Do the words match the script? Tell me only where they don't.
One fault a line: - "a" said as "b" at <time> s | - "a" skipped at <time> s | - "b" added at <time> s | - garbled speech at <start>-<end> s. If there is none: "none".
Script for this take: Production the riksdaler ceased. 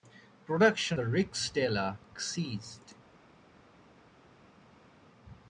none